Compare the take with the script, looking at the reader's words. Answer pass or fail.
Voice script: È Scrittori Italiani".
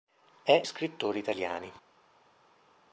pass